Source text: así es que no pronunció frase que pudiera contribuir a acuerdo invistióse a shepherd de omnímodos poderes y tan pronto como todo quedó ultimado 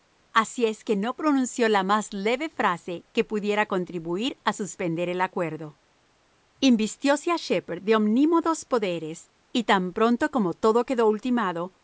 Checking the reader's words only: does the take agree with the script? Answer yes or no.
no